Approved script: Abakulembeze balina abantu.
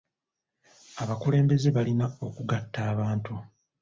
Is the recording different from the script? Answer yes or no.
yes